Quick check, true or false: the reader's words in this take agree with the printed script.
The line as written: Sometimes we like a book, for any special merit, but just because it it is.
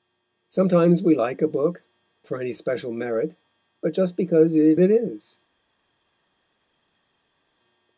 true